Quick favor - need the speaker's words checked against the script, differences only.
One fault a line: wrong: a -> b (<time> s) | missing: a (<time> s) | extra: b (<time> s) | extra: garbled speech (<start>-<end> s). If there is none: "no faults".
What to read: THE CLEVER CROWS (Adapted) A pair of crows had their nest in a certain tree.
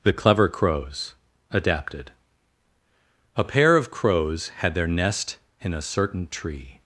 no faults